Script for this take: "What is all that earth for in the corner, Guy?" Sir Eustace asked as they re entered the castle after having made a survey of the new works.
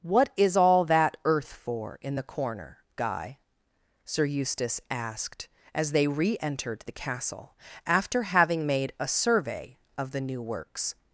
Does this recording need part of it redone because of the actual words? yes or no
no